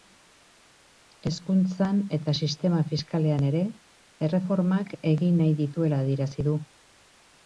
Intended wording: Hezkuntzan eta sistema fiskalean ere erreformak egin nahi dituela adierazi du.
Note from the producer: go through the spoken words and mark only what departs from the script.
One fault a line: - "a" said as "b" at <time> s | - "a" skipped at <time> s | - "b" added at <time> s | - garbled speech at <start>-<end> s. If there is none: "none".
none